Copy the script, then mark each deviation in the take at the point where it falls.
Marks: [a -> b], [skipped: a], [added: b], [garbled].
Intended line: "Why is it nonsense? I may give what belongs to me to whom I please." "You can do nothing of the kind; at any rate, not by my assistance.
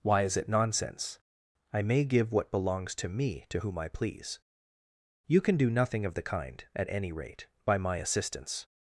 "Why is it nonsense? I may give what belongs to me to whom I please." "You can do nothing of the kind; at any rate, [skipped: not] by my assistance.